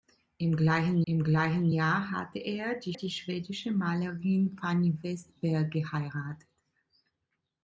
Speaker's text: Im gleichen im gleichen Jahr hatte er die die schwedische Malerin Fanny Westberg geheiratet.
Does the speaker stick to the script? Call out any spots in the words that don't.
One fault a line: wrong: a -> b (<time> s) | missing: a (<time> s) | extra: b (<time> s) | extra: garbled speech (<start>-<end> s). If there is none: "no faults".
no faults